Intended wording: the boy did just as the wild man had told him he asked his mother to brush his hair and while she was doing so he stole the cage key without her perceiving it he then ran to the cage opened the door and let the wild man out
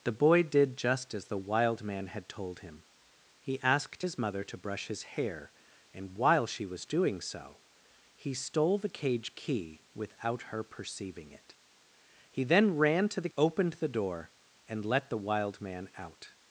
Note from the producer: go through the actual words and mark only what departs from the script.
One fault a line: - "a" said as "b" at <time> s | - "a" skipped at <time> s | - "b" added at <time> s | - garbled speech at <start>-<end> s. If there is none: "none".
- "cage" skipped at 13.3 s